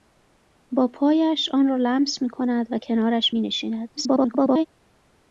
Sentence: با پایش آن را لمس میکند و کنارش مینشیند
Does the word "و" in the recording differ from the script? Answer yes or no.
no